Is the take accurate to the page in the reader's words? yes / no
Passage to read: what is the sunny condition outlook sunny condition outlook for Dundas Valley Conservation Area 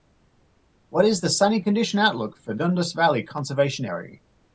no